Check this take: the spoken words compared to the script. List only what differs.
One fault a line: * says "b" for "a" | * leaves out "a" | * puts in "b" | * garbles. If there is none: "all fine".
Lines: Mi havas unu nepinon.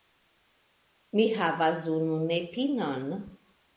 all fine